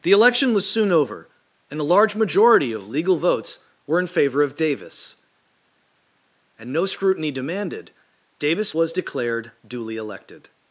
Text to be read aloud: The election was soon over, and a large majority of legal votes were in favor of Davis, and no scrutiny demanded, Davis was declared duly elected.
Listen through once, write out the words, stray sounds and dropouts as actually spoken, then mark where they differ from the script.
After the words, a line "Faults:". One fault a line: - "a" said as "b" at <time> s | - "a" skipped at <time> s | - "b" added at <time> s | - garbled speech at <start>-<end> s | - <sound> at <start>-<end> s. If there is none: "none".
The election was soon over, and a large majority of legal votes were in favor of Davis, and no scrutiny demanded, Davis was declared duly elected.
Faults:
none